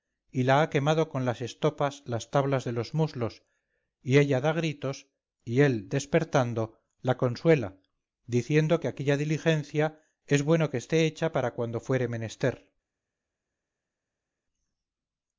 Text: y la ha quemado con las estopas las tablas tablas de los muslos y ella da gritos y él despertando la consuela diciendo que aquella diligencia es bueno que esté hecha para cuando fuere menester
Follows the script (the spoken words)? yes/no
no